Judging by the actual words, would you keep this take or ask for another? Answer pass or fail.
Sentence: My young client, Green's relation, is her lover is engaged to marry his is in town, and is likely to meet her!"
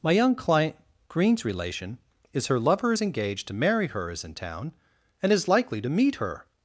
fail